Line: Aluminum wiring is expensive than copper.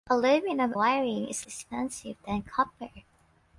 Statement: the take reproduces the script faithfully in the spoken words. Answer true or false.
true